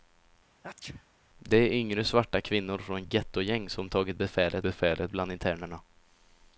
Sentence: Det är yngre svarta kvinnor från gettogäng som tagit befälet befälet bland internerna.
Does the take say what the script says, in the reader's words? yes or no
yes